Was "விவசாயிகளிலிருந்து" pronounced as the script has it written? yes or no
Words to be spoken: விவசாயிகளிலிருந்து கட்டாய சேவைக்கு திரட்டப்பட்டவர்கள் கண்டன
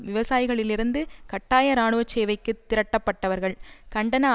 yes